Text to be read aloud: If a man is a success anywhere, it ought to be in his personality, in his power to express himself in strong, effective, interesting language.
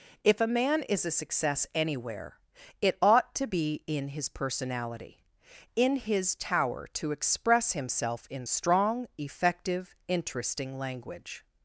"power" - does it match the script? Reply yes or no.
no